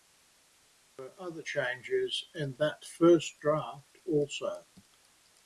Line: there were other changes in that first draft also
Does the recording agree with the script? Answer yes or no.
yes